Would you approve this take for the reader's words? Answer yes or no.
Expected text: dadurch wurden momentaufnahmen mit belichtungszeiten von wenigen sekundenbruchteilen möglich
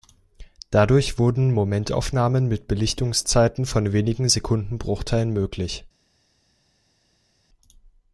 yes